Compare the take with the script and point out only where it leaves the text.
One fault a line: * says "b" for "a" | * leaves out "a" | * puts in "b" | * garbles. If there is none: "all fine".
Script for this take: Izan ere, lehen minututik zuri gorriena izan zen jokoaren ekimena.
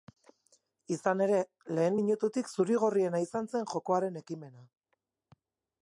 all fine